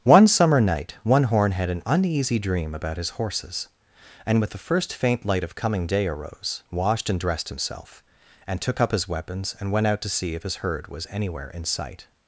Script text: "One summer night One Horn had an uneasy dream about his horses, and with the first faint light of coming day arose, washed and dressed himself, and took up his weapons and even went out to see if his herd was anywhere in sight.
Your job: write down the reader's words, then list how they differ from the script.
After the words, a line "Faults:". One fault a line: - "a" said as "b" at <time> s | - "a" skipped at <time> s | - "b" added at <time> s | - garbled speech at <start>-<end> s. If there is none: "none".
"One summer night One Horn had an uneasy dream about his horses, and with the first faint light of coming day arose, washed and dressed himself, and took up his weapons and went out to see if his herd was anywhere in sight.
Faults:
- "even" skipped at 9.7 s